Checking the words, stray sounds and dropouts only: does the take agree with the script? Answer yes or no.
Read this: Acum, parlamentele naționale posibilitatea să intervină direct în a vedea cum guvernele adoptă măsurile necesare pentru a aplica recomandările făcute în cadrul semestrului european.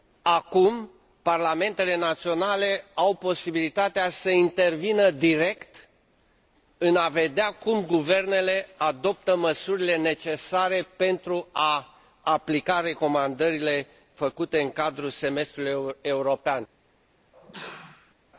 no